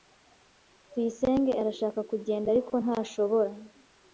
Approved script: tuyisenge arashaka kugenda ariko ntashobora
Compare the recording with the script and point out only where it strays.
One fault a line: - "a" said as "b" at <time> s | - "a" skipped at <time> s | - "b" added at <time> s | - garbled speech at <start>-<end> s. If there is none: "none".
none